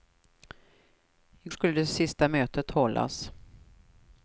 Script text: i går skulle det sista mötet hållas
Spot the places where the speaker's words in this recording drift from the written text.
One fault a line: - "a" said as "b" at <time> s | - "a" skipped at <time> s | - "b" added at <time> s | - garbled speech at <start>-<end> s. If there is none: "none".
- "går" skipped at 1.5 s